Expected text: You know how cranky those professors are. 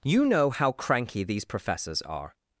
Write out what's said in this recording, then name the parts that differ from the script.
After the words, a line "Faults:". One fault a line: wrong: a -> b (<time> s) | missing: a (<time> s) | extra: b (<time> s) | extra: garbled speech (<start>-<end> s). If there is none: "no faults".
You know how cranky these professors are.
Faults:
wrong: those -> these (1.2 s)